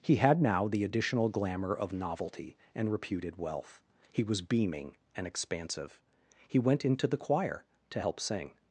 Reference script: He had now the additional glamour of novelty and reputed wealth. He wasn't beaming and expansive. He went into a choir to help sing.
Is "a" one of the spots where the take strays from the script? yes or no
yes